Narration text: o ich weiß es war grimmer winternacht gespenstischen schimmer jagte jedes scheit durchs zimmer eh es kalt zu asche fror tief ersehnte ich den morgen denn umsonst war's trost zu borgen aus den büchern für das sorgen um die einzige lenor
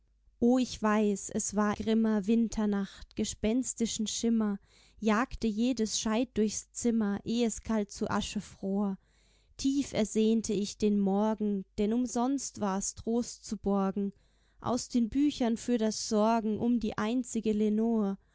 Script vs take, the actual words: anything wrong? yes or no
no